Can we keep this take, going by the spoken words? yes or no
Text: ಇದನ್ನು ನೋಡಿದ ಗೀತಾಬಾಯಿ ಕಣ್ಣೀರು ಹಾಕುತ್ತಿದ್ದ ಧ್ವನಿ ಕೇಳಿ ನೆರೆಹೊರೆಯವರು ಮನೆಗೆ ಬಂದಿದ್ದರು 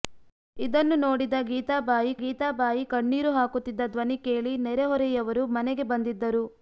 no